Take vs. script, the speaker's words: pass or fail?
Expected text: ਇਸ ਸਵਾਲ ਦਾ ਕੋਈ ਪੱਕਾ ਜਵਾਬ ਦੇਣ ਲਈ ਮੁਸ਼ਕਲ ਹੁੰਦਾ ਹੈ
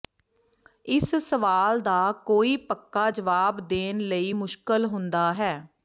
pass